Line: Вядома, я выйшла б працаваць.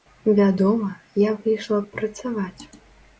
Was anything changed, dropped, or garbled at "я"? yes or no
no